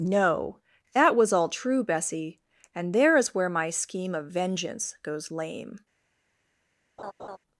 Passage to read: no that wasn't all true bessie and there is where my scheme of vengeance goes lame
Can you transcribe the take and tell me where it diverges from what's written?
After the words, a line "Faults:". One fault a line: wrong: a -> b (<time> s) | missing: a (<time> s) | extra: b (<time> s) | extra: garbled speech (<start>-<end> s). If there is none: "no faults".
no that was all true bessie and there is where my scheme of vengeance goes lame
Faults:
wrong: wasn't -> was (1.1 s)